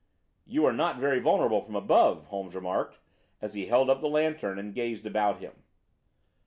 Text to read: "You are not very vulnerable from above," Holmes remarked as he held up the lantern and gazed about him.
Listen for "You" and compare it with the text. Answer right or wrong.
right